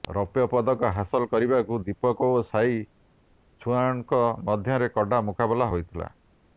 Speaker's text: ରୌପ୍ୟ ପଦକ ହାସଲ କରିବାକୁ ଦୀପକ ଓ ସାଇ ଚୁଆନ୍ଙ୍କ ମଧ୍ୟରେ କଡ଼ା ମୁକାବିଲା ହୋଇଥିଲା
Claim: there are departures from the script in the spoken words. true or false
false